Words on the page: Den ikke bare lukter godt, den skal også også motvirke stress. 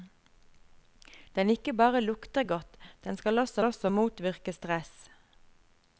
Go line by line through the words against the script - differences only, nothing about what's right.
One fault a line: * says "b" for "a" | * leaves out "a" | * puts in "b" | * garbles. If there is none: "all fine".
all fine